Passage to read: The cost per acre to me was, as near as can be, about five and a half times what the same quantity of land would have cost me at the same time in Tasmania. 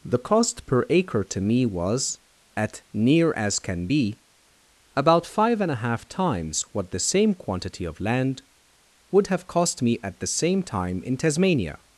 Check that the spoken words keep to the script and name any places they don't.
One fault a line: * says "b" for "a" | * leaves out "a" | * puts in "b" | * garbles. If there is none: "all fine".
* says "at" for "as"